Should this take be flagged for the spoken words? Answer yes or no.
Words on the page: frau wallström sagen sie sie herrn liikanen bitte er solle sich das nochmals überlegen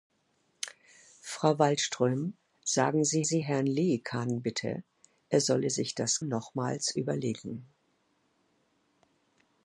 no